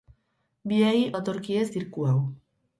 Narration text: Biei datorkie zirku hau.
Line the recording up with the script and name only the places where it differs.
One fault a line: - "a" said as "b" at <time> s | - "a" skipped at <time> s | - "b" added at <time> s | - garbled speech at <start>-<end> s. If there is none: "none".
none